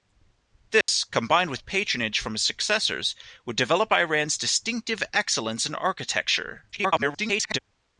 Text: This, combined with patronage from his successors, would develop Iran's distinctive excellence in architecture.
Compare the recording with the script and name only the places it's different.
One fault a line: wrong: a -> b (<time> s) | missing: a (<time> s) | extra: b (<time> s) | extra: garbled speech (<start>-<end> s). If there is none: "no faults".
extra: garbled speech (6.7-7.6 s)